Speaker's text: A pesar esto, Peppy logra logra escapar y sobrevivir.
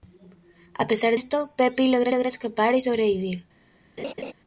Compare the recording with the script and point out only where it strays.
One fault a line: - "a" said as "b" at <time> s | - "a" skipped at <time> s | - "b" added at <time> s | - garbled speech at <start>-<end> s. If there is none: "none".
none